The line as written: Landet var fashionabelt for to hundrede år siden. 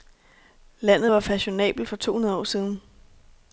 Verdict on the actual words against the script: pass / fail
pass